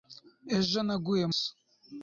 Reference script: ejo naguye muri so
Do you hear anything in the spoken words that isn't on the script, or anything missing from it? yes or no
yes